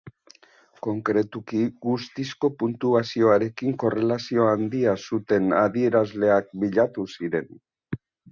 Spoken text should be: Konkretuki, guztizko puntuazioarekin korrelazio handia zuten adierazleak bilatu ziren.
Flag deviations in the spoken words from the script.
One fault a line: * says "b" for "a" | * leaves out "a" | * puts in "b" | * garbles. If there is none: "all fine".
all fine